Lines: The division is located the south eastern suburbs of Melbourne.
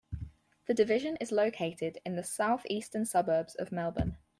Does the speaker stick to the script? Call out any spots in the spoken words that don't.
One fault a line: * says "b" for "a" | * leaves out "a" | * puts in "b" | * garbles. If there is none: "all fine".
* puts in "in"